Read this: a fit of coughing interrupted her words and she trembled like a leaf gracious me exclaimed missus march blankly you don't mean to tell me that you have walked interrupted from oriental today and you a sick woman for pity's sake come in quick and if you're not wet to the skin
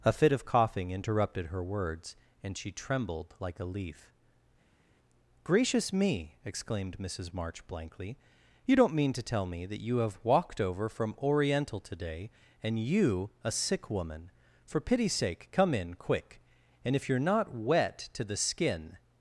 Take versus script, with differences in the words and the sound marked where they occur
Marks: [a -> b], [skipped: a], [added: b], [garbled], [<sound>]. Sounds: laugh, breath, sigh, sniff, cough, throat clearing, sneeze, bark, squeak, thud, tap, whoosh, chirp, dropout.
a fit of coughing interrupted her words and she trembled like a leaf gracious me exclaimed missus march blankly you don't mean to tell me that you have walked [interrupted -> over] from oriental today and you a sick woman for pity's sake come in quick and if you're not wet to the skin